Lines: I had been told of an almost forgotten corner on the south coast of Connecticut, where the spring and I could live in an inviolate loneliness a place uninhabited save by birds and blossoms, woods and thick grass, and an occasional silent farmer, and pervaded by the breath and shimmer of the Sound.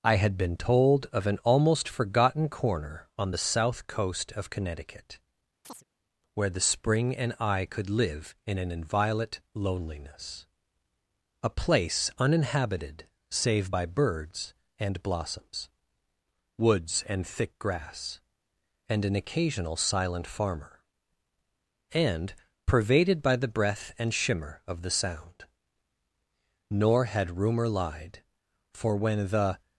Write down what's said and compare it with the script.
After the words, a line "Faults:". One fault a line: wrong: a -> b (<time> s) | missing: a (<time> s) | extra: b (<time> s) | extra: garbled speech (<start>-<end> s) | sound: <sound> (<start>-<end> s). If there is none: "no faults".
I had been told of an almost forgotten corner on the south coast of Connecticut, where the spring and I could live in an inviolate loneliness a place uninhabited save by birds and blossoms, woods and thick grass, and an occasional silent farmer, and pervaded by the breath and shimmer of the Sound. Nor had rumor lied, for when the
Faults:
sound: chirp (5.6-5.8 s)
extra: Nor had rumor lied for when the (26.7 s)